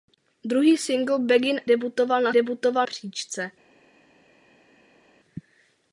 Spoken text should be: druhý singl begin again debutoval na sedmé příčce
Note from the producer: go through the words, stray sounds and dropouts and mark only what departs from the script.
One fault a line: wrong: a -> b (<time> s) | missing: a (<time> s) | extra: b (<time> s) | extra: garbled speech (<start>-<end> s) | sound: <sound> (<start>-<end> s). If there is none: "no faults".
missing: again (1.6 s)
wrong: sedmé -> debutoval (2.3 s)